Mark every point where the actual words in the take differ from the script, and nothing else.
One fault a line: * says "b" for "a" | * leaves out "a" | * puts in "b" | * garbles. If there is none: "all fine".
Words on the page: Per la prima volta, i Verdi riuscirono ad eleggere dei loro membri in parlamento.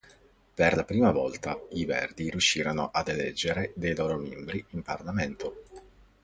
all fine